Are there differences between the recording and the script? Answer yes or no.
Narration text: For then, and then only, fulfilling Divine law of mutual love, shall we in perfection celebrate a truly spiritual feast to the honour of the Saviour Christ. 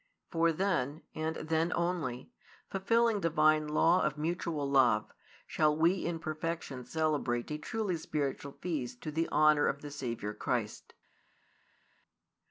no